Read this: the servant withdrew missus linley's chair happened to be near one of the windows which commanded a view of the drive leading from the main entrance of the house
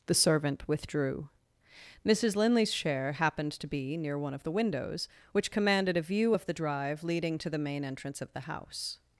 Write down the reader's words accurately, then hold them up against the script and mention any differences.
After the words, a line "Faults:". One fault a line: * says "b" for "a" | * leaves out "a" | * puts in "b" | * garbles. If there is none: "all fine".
the servant withdrew missus linley's chair happened to be near one of the windows which commanded a view of the drive leading to the main entrance of the house
Faults:
* says "to" for "from"